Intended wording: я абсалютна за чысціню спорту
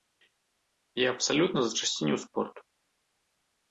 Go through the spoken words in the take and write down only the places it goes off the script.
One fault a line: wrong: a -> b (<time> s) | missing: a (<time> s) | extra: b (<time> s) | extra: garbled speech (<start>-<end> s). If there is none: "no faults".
no faults